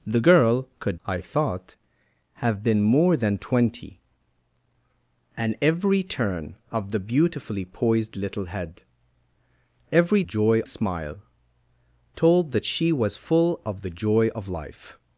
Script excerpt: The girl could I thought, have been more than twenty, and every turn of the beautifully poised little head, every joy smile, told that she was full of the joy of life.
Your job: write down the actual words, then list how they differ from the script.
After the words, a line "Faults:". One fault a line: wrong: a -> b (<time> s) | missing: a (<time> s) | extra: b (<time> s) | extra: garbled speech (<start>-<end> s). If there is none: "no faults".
The girl could I thought, have been more than twenty, and every turn of the beautifully poised little head, every joy smile, told that she was full of the joy of life.
Faults:
no faults